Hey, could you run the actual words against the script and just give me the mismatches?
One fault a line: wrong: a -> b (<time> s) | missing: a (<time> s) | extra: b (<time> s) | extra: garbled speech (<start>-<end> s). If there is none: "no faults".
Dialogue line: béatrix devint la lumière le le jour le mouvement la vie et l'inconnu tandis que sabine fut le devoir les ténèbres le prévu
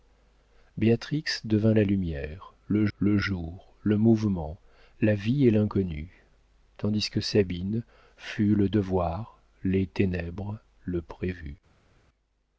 no faults